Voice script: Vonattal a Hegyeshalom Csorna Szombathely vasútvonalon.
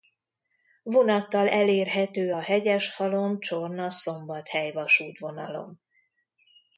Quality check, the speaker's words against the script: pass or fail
fail